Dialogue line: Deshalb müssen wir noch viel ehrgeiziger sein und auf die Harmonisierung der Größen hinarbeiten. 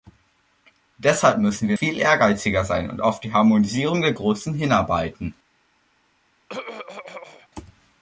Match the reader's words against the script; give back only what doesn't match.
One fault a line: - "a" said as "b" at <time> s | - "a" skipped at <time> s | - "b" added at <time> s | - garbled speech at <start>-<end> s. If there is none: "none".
- "noch" skipped at 1.8 s